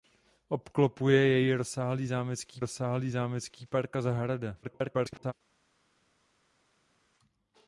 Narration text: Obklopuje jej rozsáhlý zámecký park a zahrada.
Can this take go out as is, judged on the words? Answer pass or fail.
fail